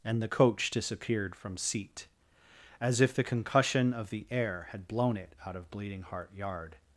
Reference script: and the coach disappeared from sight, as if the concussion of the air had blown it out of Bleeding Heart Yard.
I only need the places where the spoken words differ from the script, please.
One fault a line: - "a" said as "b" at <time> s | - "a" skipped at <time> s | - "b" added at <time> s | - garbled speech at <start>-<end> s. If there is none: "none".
- "sight" said as "seat" at 1.5 s